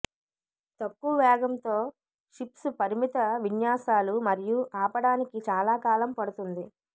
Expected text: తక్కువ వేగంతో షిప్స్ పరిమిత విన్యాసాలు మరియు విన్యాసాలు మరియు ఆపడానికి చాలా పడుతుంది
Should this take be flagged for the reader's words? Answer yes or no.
yes